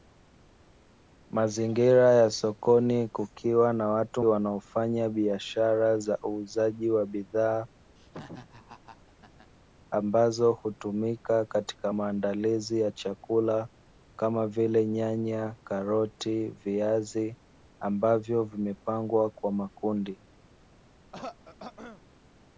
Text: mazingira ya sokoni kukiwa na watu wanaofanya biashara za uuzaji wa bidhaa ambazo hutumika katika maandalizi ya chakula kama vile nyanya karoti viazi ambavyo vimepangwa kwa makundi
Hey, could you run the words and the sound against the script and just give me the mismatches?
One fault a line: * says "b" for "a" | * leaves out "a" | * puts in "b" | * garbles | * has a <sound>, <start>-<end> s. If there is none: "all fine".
* has a laugh, 8.0-9.5 s
* has a throat clearing, 21.1-22.0 s